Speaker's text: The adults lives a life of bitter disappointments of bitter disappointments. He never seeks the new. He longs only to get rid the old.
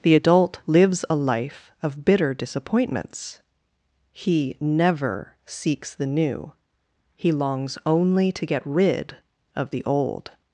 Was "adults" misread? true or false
true